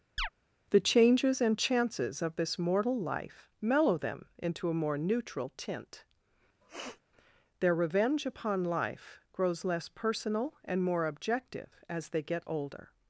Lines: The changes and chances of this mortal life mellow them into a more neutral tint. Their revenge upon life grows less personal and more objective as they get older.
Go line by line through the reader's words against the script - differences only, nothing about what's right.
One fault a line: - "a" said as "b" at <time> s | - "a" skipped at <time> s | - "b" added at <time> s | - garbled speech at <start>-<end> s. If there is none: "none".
none